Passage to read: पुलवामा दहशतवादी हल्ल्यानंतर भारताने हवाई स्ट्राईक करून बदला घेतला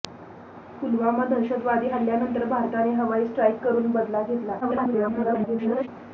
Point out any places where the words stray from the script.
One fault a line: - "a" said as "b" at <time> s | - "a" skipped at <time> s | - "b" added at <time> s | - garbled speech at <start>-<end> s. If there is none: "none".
- garbled speech at 4.6-5.9 s